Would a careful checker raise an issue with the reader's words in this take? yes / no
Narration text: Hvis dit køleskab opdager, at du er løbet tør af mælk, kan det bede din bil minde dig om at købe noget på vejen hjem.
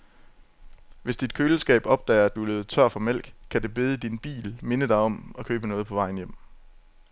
yes